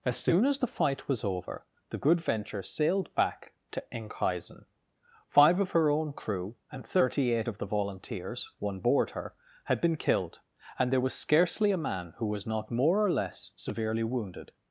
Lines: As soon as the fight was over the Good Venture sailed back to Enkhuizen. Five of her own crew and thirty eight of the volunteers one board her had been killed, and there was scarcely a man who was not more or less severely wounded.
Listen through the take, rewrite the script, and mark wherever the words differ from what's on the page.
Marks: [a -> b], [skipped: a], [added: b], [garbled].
As soon as the fight was over the Good Venture sailed back to Enkhuizen. Five of her own crew and thirty eight of the volunteers one board her had been killed, and there was scarcely a man who was not more or less severely wounded.